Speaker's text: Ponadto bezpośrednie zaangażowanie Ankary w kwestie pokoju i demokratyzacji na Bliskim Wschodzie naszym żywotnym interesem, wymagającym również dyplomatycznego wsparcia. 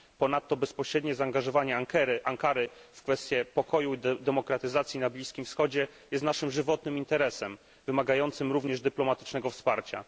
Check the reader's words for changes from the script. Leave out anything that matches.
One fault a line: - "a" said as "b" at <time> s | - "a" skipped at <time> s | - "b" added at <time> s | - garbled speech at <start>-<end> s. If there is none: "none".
- "jest" added at 6.1 s